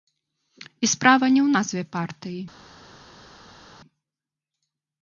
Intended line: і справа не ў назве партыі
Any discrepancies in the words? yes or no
no